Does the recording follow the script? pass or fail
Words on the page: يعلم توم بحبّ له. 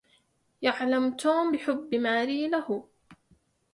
fail